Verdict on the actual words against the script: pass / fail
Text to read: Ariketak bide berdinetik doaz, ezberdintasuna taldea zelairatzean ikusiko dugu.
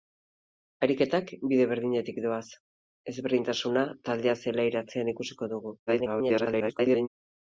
fail